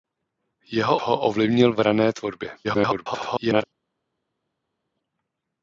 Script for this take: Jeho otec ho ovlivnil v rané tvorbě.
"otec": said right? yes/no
no